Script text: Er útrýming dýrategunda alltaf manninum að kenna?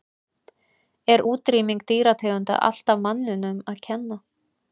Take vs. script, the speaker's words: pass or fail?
pass